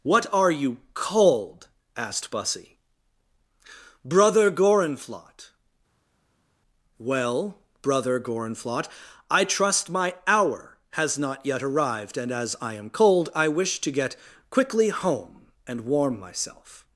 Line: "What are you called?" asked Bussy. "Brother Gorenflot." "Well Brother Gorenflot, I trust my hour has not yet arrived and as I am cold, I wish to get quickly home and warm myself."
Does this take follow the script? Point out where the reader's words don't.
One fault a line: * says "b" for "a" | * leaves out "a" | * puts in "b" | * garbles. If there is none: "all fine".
all fine